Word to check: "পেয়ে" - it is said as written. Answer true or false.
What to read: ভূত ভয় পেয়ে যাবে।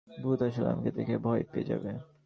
true